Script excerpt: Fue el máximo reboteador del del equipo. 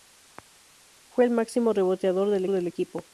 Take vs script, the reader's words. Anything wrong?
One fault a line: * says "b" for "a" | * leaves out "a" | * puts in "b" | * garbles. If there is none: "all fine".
all fine